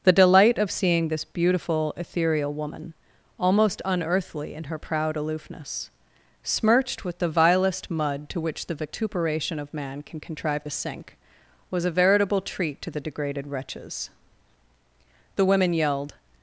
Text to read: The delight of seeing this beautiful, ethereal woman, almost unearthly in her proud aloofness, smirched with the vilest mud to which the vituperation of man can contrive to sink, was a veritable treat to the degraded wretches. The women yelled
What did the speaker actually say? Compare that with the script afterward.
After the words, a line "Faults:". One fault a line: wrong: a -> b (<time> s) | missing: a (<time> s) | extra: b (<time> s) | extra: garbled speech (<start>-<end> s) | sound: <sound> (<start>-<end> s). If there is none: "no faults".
The delight of seeing this beautiful, ethereal woman, almost unearthly in her proud aloofness, smirched with the vilest mud to which the vituperation of man can contrive to sink, was a veritable treat to the degraded wretches. The women yelled
Faults:
no faults